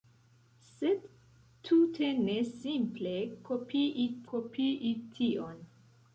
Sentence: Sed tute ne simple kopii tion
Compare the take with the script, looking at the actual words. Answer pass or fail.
fail